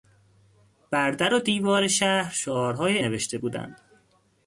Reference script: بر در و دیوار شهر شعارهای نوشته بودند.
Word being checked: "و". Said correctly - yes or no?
yes